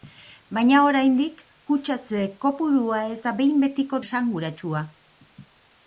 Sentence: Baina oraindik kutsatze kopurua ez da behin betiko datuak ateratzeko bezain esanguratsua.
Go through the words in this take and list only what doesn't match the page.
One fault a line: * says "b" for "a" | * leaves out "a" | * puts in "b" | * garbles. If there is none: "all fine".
* leaves out "datuak ateratzeko bezain"